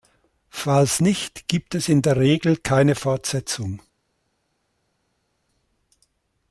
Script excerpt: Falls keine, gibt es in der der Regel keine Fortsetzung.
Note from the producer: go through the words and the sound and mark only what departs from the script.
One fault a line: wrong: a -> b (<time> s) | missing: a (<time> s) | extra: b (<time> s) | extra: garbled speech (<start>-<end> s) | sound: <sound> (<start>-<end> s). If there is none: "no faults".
wrong: keine -> nicht (1.0 s)
missing: der (2.2 s)